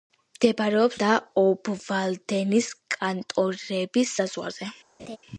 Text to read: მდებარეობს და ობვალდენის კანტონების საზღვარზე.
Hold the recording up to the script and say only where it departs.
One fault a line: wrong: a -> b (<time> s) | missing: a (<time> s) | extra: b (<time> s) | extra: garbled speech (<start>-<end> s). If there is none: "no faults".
no faults